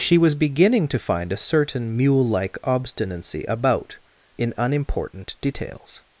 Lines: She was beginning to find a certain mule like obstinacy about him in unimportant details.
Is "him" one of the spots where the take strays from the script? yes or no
yes